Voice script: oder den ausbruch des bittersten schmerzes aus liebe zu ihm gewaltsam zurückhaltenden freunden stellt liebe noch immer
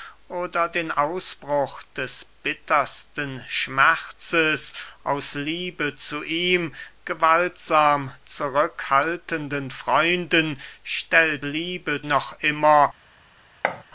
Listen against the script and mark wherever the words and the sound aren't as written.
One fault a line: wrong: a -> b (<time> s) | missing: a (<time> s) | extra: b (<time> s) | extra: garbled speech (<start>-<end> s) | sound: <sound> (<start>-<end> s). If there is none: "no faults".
sound: thud (13.6-13.8 s)